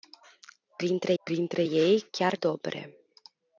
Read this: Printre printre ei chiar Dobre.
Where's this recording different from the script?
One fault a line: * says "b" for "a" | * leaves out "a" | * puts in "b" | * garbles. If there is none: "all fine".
all fine